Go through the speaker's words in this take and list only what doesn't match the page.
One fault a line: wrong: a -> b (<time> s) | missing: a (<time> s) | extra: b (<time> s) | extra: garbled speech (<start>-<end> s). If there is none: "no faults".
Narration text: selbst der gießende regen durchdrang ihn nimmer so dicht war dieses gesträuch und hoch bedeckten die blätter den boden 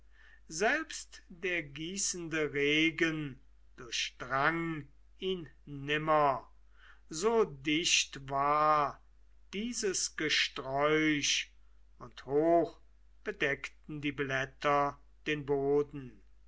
no faults